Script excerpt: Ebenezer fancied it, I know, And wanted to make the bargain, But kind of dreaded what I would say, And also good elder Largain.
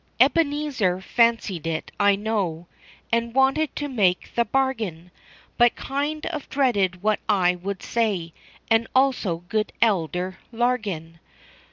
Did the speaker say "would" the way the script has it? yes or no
yes